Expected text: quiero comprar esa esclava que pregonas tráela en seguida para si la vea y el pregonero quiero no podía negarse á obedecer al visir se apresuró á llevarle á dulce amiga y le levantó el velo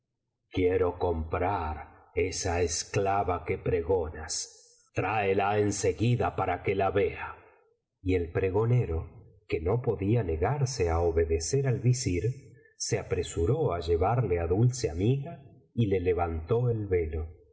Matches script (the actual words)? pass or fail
fail